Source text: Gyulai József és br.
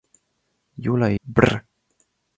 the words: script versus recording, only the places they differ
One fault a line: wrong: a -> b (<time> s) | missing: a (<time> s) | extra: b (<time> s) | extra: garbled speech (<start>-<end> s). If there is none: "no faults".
missing: József és (1.2 s)